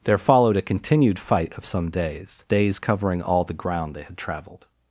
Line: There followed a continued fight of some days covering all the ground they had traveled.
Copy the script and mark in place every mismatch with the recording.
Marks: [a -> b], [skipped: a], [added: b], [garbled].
There followed a continued fight of some days [added: days] covering all the ground they had traveled.